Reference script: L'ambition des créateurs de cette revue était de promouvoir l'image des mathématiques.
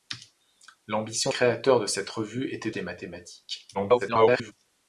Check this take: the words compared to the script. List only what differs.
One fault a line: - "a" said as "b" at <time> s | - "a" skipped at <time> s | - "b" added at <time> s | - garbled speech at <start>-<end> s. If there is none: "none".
- "des" skipped at 1.3 s
- "de promouvoir l'image" skipped at 2.7 s
- garbled speech at 3.7-4.5 s